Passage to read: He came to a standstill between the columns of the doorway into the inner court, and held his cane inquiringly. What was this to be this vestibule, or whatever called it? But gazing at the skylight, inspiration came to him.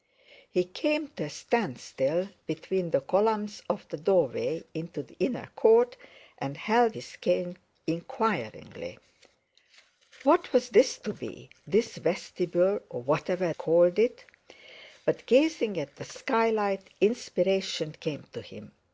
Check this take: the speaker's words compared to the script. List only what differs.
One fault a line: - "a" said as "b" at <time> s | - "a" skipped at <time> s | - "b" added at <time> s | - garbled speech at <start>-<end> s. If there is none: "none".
none